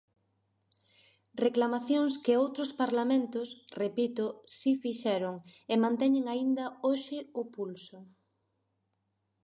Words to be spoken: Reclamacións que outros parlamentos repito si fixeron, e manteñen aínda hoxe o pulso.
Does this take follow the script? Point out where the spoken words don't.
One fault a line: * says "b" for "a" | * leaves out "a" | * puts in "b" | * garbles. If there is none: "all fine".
all fine